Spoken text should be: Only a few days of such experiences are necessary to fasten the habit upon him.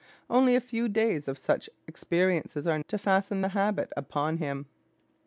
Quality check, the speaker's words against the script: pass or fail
fail